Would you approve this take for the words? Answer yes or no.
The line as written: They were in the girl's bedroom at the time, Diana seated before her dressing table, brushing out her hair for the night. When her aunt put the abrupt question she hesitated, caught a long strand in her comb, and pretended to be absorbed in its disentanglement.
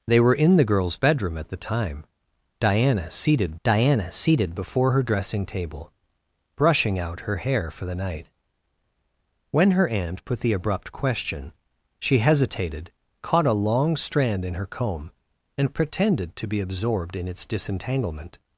no